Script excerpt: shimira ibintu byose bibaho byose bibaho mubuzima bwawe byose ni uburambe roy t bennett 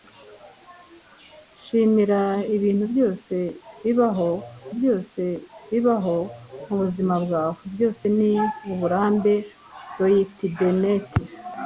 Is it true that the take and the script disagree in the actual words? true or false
false